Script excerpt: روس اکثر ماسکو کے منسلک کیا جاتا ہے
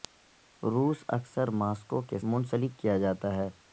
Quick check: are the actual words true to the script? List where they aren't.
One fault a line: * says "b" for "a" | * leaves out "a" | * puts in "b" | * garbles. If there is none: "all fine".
all fine